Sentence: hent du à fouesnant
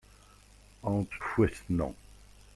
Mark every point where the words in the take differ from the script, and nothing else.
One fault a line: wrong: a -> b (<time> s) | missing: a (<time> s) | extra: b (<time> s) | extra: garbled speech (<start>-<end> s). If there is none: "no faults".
missing: du à (1.1 s)